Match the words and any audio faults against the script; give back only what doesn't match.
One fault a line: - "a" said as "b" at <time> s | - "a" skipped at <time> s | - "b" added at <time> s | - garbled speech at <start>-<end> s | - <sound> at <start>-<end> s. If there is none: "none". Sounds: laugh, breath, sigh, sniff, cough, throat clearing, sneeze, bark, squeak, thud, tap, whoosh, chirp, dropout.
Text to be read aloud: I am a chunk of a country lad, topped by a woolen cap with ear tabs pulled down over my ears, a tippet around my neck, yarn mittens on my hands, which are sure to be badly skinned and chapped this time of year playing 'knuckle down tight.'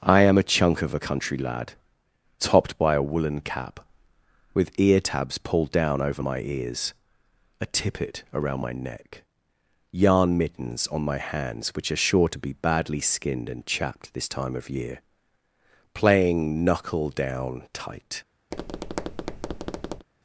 - tap at 18.5-20.1 s